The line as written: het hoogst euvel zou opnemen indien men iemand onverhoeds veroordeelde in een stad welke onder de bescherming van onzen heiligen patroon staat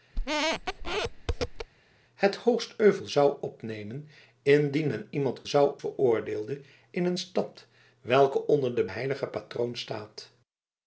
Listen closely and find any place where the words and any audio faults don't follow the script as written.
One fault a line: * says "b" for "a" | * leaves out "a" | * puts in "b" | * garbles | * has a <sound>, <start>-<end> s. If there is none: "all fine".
* has a squeak, 0.1-1.7 s
* says "zou" for "onverhoeds"
* leaves out "bescherming van onzen"